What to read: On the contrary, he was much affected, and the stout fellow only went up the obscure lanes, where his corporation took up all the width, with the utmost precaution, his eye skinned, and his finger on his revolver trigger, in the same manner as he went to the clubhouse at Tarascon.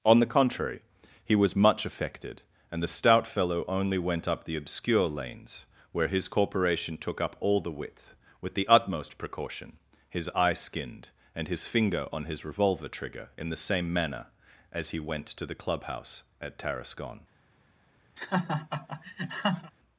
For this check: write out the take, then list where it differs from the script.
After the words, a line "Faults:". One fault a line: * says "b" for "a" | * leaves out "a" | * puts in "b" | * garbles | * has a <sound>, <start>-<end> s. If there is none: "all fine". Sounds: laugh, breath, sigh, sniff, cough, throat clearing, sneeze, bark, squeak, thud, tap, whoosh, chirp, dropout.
On the contrary, he was much affected, and the stout fellow only went up the obscure lanes, where his corporation took up all the width, with the utmost precaution, his eye skinned, and his finger on his revolver trigger, in the same manner as he went to the clubhouse at Tarascon.
Faults:
* has a laugh, 18.2-19.7 s